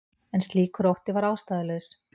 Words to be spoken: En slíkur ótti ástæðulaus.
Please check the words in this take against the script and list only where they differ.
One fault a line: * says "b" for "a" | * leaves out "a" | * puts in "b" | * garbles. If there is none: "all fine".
* puts in "var"